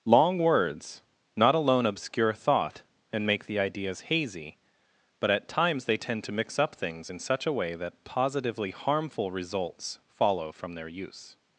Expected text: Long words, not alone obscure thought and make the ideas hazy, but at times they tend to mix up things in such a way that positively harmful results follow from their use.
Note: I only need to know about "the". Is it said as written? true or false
true